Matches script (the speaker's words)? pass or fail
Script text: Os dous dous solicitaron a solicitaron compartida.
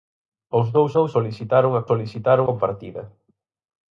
pass